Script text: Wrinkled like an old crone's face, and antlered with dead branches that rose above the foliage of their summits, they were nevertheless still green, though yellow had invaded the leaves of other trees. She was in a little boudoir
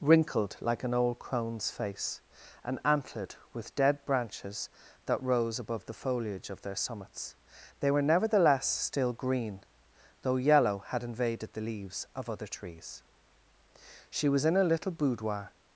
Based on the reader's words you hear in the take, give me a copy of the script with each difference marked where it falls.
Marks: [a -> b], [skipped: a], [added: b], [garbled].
Wrinkled like an old crone's face, and antlered with dead branches that rose above the foliage of their summits, they were nevertheless still green, though yellow had invaded the leaves of other trees. She was in a little boudoir